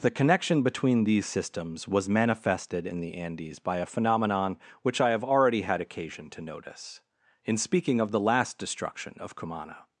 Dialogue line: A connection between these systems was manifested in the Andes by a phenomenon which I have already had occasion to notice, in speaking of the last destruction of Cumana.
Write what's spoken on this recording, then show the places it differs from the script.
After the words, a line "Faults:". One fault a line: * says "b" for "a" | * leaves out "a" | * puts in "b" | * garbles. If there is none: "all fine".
The connection between these systems was manifested in the Andes by a phenomenon which I have already had occasion to notice, in speaking of the last destruction of Cumana.
Faults:
* says "The" for "A"